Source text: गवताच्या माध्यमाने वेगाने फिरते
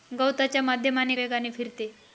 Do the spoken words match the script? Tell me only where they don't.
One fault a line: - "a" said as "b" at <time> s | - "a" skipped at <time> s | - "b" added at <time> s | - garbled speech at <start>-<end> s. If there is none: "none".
none